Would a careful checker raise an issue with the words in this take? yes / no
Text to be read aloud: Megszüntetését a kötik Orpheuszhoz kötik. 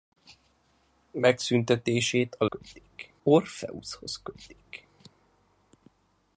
no